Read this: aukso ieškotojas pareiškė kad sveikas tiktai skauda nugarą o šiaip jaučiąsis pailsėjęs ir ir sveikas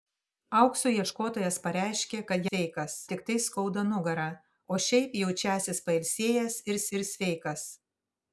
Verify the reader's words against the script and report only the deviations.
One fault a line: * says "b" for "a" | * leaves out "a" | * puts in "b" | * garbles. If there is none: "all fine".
all fine